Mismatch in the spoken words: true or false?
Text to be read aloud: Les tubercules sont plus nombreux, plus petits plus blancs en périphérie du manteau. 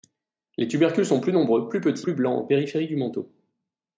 false